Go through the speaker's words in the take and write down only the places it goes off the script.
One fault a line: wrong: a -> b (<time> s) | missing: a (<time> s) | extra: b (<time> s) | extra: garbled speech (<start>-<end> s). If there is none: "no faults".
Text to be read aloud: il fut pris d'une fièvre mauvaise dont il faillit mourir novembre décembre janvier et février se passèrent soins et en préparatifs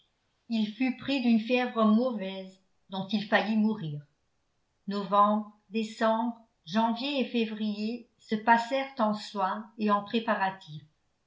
extra: en (9.0 s)